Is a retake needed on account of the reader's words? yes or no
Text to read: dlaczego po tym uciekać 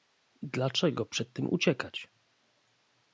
yes